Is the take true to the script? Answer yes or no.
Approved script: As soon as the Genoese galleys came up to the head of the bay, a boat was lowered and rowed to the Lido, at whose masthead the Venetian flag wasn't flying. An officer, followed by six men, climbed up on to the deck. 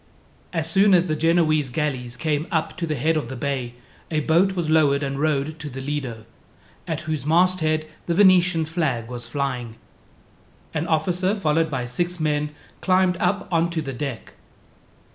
no